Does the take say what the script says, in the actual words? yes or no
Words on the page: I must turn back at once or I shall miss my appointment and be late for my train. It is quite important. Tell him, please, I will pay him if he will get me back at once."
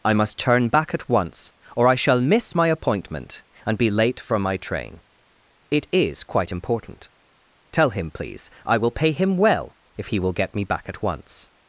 no